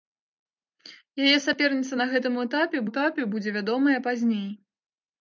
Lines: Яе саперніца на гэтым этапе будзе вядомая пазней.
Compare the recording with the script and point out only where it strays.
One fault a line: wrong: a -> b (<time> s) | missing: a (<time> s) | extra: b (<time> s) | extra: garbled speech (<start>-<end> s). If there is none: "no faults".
extra: этапе (2.9 s)